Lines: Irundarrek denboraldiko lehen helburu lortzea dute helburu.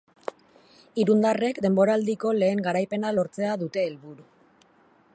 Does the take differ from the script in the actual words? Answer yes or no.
yes